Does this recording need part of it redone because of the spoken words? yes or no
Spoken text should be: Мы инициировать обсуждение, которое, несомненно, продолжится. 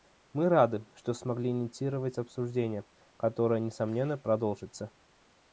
yes